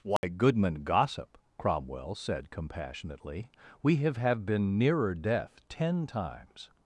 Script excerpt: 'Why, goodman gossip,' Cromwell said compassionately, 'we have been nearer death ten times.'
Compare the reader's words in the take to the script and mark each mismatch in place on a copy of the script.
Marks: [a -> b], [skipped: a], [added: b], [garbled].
'Why, goodman gossip,' Cromwell said compassionately, 'we have [added: have] been nearer death ten times.'